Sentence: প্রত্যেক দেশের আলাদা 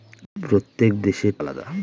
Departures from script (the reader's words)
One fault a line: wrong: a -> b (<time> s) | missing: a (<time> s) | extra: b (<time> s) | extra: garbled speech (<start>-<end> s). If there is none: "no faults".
no faults